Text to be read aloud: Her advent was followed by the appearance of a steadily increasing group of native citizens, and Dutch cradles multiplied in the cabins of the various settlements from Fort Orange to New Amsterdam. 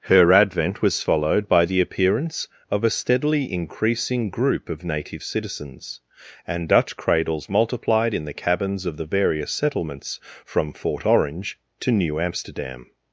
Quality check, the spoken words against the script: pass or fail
pass